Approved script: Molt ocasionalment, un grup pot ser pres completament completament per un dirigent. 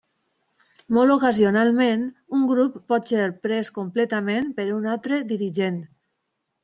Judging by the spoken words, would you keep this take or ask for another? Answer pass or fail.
fail